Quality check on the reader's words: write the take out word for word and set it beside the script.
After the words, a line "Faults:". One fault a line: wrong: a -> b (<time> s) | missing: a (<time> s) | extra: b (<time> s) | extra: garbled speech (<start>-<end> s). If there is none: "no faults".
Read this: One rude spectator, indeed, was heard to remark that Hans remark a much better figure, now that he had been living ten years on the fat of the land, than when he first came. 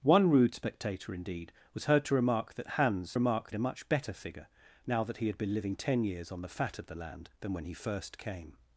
One rude spectator, indeed, was heard to remark that Hans remark a much better figure, now that he had been living ten years on the fat of the land, than when he first came.
Faults:
no faults